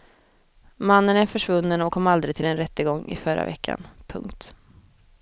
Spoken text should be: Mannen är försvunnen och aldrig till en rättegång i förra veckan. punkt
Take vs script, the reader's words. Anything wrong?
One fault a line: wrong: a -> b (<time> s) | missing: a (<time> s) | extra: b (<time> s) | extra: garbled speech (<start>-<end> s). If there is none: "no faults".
extra: kom (1.9 s)